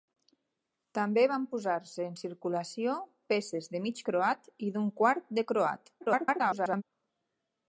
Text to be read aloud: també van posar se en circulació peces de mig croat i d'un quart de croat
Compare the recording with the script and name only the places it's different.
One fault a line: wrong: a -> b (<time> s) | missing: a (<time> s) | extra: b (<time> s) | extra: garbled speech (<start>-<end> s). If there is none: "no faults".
extra: garbled speech (6.0-6.8 s)